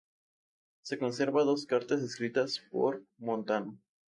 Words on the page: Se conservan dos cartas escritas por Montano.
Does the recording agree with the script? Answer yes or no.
yes